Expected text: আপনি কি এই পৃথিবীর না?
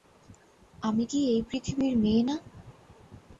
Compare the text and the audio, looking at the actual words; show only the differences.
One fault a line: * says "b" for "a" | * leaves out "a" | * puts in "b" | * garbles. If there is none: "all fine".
* says "আমি" for "আপনি"
* puts in "মেয়ে"